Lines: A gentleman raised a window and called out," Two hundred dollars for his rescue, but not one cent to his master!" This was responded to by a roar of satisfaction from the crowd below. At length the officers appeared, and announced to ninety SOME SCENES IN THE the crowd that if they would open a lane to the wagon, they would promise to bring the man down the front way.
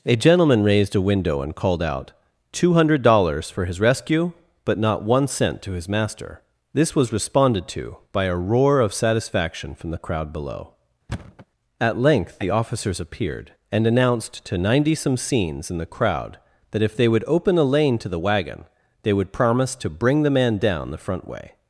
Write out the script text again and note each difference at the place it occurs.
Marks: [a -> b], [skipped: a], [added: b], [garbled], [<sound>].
A gentleman raised a window and called out," Two hundred dollars for his rescue, but not one cent to his master!" This was responded to by a roar of satisfaction from the crowd below. [thud] At length the officers appeared, and announced to ninety SOME SCENES IN THE [skipped: the] crowd that if they would open a lane to the wagon, they would promise to bring the man down the front way.